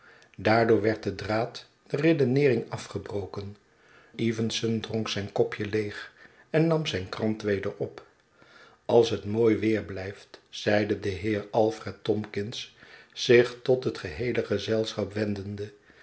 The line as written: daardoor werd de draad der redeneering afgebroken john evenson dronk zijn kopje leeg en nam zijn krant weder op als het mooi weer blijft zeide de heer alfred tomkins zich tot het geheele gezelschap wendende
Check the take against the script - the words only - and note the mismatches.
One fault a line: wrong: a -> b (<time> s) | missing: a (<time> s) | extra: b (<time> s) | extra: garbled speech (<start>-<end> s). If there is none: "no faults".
missing: john (3.6 s)